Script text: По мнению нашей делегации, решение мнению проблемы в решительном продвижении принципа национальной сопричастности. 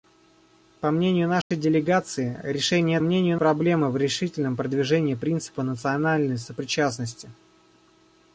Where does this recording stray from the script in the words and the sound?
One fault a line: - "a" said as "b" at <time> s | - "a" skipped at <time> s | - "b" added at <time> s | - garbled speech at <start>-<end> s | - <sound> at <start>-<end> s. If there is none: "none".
- dropout at 1.4-1.5 s